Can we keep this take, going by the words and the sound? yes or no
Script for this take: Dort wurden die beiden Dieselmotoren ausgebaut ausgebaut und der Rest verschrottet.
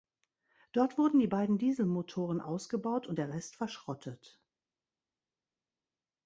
no